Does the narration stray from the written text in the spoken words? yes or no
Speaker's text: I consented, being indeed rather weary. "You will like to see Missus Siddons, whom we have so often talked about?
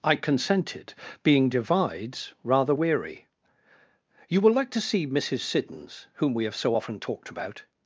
yes